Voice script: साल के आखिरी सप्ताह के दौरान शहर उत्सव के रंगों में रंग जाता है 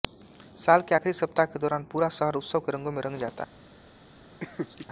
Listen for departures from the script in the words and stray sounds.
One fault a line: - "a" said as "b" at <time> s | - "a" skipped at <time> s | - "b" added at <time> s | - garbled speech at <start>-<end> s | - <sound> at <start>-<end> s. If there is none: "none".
- "पूरा" added at 1.9 s
- laugh at 4.4-4.9 s